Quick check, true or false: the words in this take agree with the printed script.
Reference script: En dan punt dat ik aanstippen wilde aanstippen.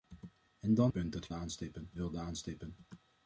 true